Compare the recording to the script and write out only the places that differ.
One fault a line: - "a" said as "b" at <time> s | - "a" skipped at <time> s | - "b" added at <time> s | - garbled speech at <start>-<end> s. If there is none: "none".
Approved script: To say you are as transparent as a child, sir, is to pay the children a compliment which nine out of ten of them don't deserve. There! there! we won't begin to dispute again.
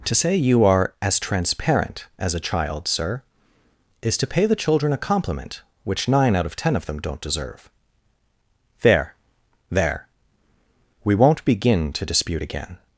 none